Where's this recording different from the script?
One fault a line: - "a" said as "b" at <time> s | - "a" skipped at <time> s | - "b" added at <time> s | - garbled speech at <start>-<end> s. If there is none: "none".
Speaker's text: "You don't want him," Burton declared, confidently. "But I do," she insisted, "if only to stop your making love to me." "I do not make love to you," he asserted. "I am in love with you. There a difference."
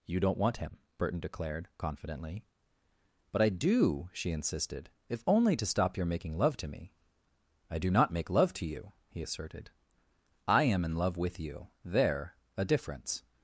none